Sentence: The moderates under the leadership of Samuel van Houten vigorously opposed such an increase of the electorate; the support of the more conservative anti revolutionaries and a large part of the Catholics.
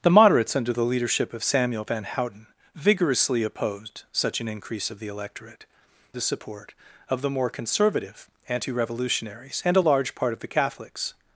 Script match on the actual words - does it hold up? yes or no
yes